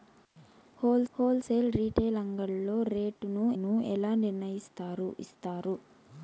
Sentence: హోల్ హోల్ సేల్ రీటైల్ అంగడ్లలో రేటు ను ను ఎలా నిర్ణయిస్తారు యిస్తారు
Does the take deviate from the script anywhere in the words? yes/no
no